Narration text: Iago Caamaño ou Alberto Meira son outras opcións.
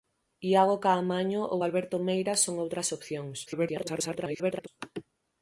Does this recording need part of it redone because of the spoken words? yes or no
yes